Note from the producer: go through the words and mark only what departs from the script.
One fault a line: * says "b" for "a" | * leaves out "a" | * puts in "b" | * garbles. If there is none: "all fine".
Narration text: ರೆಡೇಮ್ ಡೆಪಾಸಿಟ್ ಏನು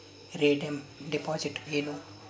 all fine